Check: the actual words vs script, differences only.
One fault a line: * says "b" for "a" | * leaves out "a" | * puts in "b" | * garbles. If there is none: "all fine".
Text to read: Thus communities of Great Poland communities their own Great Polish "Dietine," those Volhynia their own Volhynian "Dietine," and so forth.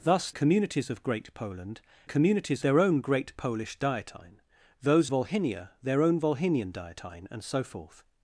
all fine